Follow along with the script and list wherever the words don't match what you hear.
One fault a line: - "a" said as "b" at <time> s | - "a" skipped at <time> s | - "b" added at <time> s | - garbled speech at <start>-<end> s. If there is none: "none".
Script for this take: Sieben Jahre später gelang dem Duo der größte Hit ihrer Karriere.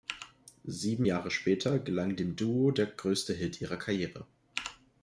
none